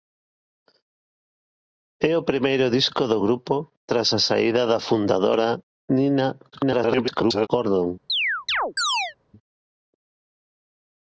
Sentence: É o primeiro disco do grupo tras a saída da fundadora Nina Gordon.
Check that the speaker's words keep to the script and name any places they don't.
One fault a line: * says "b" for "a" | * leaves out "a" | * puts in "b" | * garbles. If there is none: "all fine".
* garbles